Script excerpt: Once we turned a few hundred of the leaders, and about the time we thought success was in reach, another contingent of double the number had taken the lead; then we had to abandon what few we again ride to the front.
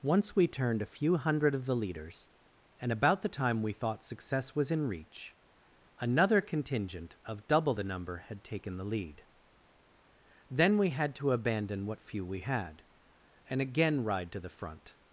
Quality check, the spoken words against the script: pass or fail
fail